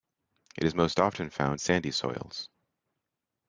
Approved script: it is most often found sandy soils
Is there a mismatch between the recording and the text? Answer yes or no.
no